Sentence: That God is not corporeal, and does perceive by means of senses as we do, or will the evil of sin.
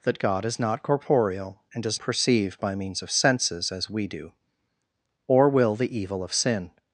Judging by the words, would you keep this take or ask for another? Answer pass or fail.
pass